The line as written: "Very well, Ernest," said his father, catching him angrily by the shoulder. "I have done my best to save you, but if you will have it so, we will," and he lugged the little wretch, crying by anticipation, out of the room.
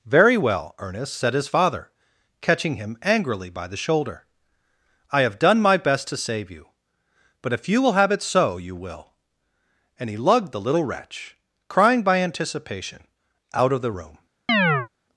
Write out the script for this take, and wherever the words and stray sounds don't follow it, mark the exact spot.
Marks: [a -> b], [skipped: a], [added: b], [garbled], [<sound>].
"Very well, Ernest," said his father, catching him angrily by the shoulder. "I have done my best to save you, but if you will have it so, [we -> you] will," and he lugged the little wretch, crying by anticipation, out of the room. [chirp]